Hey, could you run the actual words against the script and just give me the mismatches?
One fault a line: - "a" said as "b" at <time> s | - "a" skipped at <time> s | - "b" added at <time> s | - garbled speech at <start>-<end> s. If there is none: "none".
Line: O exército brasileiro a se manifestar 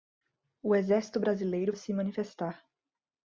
none